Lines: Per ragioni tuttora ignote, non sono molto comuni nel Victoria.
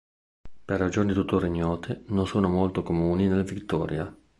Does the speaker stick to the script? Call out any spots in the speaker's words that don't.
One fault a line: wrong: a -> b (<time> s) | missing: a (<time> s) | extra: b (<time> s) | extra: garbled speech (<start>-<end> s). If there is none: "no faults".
no faults